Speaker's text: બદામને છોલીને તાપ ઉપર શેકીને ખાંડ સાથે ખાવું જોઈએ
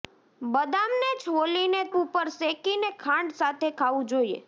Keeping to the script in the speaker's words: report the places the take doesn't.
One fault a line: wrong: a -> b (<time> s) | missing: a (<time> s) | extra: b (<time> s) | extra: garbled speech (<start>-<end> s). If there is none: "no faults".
missing: તાપ (1.8 s)